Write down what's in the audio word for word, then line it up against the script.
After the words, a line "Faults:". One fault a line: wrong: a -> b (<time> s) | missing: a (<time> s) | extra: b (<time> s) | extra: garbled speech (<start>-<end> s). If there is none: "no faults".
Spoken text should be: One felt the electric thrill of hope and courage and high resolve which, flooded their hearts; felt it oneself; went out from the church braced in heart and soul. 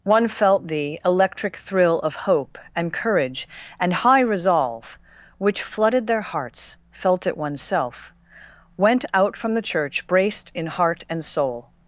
One felt the electric thrill of hope and courage and high resolve which, flooded their hearts; felt it oneself; went out from the church braced in heart and soul.
Faults:
no faults